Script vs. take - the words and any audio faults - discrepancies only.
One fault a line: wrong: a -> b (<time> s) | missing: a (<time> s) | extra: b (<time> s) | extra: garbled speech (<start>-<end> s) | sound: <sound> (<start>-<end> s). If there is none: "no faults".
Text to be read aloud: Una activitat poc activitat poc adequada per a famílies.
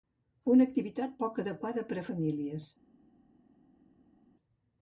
missing: activitat poc (1.4 s)